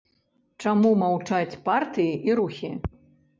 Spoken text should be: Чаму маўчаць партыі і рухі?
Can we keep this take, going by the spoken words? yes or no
yes